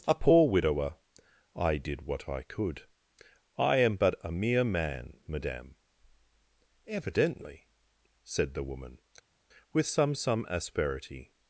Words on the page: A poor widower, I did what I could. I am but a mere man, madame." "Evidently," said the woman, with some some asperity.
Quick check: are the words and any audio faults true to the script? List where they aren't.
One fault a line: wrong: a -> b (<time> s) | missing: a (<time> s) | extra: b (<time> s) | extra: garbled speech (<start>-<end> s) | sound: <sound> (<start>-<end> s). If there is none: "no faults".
no faults